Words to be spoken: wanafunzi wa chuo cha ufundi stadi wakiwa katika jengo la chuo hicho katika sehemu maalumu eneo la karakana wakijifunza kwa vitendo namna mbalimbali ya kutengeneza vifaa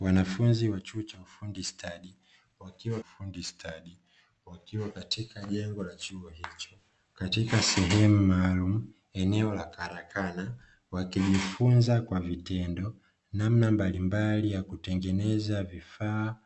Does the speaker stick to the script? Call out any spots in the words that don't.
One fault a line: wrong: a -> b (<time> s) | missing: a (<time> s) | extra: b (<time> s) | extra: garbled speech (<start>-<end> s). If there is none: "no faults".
extra: ufundi stadi wakiwa (3.0 s)